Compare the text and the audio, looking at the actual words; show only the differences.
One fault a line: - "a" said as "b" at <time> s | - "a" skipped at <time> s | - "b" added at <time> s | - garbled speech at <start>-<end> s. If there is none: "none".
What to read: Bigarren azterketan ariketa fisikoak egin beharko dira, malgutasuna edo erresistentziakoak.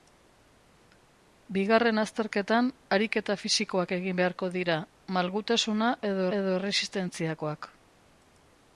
- "edo" added at 6.4 s